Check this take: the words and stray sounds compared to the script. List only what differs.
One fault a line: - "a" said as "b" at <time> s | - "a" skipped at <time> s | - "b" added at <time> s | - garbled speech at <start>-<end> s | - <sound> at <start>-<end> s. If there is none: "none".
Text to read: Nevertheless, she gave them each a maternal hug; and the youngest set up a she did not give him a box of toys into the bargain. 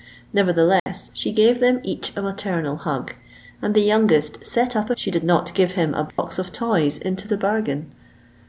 - dropout at 0.8-0.9 s
- dropout at 6.1-6.2 s